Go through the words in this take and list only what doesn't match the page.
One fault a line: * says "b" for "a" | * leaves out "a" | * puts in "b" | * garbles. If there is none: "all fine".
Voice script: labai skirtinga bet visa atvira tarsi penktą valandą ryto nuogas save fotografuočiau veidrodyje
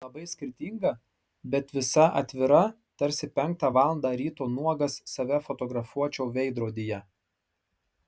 all fine